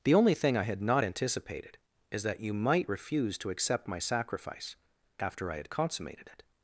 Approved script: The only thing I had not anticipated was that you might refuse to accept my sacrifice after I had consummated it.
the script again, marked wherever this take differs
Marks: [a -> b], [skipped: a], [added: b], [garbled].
The only thing I had not anticipated [was -> is] that you might refuse to accept my sacrifice after I had consummated it.